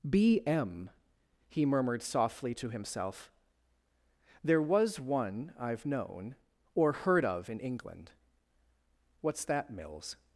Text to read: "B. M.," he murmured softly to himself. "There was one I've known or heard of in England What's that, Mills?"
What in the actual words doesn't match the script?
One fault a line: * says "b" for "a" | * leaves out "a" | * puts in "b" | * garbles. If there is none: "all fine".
all fine